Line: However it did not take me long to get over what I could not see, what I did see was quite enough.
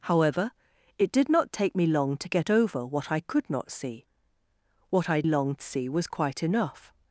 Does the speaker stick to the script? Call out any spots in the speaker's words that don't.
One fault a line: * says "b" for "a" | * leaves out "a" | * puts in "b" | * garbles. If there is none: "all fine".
* says "long" for "did"